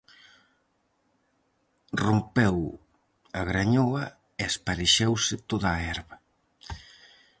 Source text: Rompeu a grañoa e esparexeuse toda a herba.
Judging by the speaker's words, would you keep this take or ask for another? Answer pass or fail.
pass